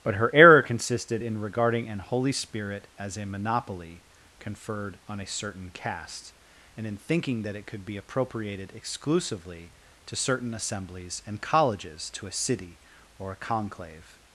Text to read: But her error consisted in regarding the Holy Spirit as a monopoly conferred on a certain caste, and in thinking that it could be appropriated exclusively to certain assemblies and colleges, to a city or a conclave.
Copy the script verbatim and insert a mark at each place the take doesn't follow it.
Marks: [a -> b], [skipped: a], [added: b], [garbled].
But her error consisted in regarding [the -> an] Holy Spirit as a monopoly conferred on a certain caste, and in thinking that it could be appropriated exclusively to certain assemblies and colleges, to a city or a conclave.